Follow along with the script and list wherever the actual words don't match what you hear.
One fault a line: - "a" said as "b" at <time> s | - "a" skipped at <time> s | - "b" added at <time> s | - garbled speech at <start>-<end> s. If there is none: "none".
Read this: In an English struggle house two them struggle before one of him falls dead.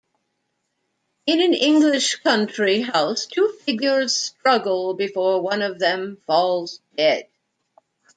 - "struggle" said as "country" at 2.2 s
- "them" said as "figures" at 3.6 s
- "him" said as "them" at 5.8 s